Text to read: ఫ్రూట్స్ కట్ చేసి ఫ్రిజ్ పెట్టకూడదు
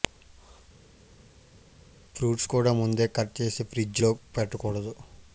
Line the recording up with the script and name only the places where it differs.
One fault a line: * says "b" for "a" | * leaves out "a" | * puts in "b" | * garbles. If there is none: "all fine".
* puts in "కూడా ముందే"
* puts in "లో"